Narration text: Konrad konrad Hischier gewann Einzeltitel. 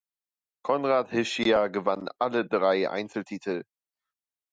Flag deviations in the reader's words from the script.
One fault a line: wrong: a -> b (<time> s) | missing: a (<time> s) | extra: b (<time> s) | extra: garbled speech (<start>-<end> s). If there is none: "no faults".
missing: konrad (1.1 s)
extra: alle drei (2.2 s)